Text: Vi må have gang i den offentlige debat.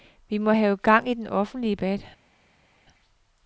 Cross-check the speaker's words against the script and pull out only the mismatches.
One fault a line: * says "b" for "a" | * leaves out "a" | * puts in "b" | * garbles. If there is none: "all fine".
all fine